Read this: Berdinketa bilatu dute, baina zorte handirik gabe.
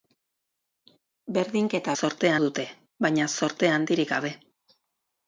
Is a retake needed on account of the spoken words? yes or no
yes